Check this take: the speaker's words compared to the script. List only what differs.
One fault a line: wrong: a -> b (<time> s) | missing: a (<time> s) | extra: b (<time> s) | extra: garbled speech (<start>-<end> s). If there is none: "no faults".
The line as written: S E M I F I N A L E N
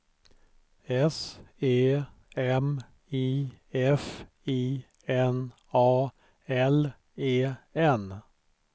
no faults